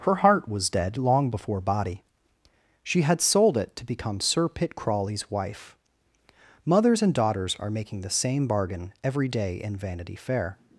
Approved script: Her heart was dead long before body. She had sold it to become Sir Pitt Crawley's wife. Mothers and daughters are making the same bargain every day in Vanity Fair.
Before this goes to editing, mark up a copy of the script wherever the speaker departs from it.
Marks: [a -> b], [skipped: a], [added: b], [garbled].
Her heart was dead long before body. She had sold it to become Sir Pitt Crawley's wife. Mothers and daughters are making the same bargain every day in Vanity Fair.